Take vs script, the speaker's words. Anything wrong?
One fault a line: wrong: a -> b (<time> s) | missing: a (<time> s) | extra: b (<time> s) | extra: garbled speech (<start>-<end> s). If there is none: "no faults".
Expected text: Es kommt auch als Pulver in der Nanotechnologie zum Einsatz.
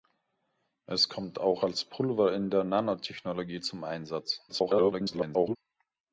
extra: garbled speech (4.5-5.6 s)